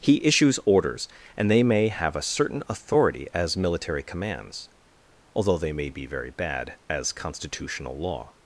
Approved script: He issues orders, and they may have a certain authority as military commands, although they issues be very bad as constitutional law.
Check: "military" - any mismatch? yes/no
no